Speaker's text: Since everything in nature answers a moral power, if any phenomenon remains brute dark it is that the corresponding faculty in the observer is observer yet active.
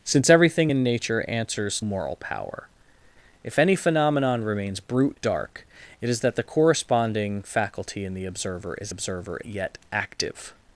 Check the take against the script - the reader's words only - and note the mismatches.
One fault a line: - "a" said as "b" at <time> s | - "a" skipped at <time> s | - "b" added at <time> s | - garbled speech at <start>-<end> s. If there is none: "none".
none